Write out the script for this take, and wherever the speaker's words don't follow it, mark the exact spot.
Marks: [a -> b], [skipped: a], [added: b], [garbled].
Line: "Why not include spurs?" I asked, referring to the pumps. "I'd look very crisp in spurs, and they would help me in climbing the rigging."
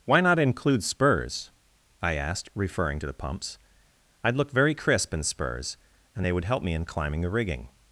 "Why not include spurs?" I asked, referring to the pumps. "I'd look very crisp in spurs, and they would help me in climbing the rigging."